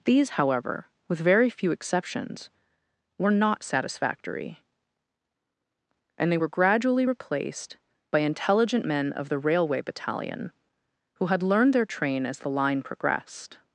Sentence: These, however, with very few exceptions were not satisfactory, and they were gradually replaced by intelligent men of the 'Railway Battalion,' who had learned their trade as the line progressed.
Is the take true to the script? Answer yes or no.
no